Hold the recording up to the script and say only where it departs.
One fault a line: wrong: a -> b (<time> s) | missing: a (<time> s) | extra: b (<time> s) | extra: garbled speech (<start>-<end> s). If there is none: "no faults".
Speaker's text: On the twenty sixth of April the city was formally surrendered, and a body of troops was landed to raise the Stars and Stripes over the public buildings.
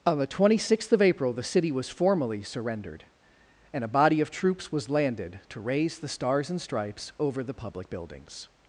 no faults